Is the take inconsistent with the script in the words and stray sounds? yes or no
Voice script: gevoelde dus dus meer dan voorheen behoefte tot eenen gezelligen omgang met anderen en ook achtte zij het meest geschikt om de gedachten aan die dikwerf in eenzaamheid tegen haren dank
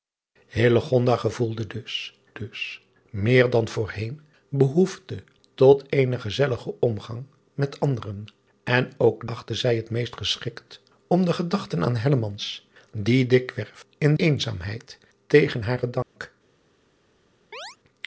yes